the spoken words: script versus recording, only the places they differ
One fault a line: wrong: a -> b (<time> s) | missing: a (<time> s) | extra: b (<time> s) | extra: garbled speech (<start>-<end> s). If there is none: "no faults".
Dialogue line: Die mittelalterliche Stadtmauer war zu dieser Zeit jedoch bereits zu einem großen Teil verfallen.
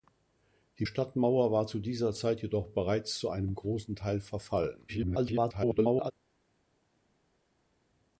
missing: mittelalterliche (0.9 s)
extra: garbled speech (4.9-6.1 s)